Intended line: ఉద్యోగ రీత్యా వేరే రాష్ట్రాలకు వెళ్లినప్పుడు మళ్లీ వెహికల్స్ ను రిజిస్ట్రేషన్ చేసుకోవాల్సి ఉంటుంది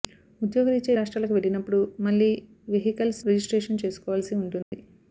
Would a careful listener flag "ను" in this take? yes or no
yes